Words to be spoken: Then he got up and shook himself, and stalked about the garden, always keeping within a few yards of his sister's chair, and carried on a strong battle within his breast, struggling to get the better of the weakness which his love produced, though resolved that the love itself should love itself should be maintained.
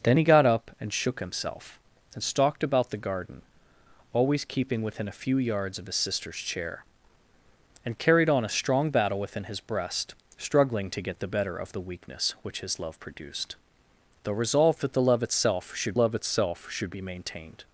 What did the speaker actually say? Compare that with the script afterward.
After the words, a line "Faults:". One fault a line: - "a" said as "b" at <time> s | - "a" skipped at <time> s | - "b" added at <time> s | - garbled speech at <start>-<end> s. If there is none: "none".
Then he got up and shook himself, and stalked about the garden, always keeping within a few yards of his sister's chair, and carried on a strong battle within his breast, struggling to get the better of the weakness which his love produced, though resolved that the love itself should love itself should be maintained.
Faults:
none